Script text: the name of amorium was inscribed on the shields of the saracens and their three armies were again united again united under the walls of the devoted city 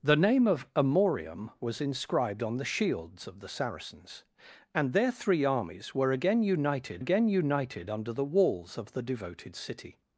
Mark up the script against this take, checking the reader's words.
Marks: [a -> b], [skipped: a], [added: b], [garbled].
the name of amorium was inscribed on the shields of the saracens and their three armies were again united again united under the walls of the devoted city